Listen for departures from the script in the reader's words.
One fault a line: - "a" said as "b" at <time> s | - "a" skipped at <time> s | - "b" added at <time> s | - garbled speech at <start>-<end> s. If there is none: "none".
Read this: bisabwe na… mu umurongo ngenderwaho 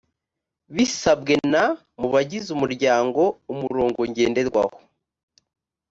- "bagize umuryango" added at 2.1 s